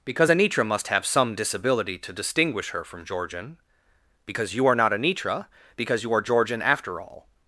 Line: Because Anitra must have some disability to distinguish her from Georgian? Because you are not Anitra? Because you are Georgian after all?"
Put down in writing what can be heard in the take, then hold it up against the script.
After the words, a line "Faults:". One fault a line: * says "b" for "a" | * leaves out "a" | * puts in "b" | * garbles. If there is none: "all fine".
Because Anitra must have some disability to distinguish her from Georgian? Because you are not Anitra? Because you are Georgian after all?"
Faults:
all fine